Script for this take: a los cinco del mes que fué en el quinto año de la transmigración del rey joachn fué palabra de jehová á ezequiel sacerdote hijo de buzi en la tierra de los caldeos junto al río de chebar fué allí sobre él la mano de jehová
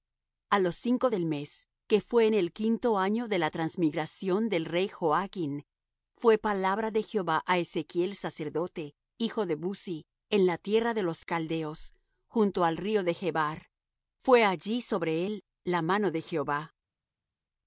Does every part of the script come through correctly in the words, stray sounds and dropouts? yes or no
yes